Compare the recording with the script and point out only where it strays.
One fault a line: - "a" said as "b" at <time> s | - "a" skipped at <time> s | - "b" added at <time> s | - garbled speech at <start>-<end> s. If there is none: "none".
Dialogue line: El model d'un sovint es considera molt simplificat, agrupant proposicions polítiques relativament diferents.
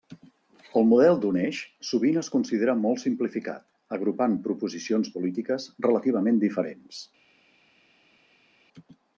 - "eix" added at 1.4 s